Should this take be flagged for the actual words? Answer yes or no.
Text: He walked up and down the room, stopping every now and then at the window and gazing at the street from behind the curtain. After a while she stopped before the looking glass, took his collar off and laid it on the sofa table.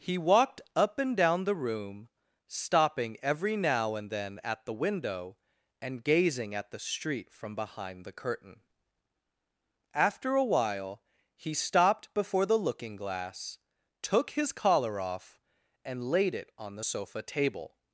yes